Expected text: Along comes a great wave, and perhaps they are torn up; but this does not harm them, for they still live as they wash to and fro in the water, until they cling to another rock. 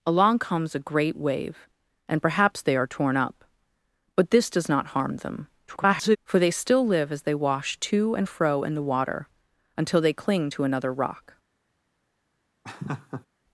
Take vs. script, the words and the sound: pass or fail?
fail